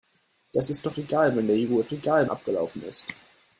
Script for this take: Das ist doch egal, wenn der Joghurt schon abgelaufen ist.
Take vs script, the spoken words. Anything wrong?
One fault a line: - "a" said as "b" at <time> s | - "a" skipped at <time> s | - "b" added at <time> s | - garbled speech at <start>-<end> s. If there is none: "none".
- "schon" said as "egal" at 1.9 s